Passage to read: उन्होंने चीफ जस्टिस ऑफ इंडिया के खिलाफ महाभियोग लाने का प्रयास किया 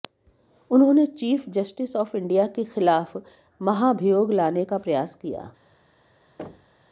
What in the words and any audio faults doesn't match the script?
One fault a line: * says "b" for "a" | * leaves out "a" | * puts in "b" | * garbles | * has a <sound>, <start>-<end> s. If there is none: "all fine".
* has a thud, 6.4-6.9 s